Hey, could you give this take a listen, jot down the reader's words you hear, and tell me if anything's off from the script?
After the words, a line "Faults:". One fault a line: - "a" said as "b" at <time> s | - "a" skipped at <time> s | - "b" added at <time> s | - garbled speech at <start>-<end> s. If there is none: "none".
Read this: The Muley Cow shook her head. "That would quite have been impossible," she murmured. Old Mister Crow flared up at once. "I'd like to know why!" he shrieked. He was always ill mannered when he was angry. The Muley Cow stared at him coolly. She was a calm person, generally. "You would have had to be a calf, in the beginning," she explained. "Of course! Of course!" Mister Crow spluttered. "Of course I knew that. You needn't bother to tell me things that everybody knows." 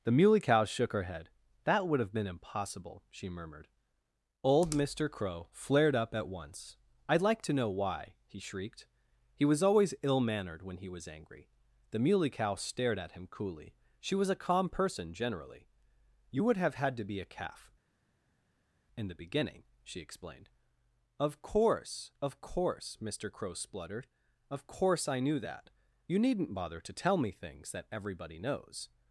The Muley Cow shook her head. "That would have been impossible," she murmured. Old Mister Crow flared up at once. "I'd like to know why!" he shrieked. He was always ill mannered when he was angry. The Muley Cow stared at him coolly. She was a calm person, generally. "You would have had to be a calf, in the beginning," she explained. "Of course! Of course!" Mister Crow spluttered. "Of course I knew that. You needn't bother to tell me things that everybody knows."
Faults:
- "quite" skipped at 2.0 s